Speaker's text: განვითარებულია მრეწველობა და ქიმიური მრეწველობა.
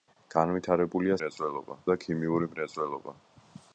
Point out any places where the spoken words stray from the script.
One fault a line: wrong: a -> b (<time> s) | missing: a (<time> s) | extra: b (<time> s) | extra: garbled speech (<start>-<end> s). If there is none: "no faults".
no faults